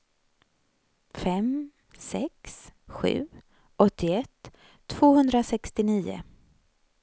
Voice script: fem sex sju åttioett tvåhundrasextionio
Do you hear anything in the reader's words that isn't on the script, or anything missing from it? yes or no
no